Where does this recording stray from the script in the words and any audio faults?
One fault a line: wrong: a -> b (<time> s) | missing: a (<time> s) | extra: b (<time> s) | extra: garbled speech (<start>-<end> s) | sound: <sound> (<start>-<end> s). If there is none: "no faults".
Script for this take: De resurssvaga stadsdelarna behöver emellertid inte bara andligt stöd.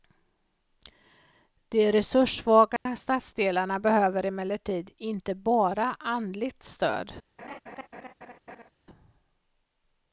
sound: dropout (2.8-2.9 s)
sound: laugh (7.4-8.7 s)